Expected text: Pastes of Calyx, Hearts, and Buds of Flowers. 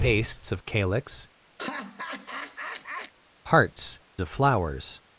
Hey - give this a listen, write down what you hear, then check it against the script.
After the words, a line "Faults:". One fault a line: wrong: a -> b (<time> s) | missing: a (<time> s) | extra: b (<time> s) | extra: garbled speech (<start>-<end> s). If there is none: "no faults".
Pastes of Calyx, Hearts, of Flowers.
Faults:
missing: and Buds (4.0 s)